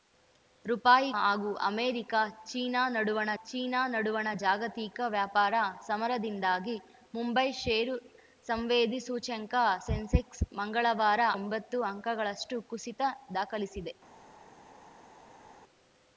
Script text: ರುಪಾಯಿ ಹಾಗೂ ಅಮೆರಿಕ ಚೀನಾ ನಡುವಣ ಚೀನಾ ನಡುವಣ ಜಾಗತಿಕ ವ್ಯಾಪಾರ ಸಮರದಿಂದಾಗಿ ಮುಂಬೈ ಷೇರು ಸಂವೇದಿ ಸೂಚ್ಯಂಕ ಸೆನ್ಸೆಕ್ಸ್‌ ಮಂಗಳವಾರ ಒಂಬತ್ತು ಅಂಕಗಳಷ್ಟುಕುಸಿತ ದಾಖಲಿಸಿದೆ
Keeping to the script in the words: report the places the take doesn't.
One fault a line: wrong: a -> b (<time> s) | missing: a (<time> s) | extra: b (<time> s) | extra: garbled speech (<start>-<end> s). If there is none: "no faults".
no faults